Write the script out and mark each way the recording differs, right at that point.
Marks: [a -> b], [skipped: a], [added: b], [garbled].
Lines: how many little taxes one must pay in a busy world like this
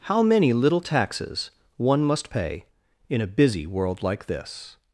how many little taxes one must pay in a busy world like this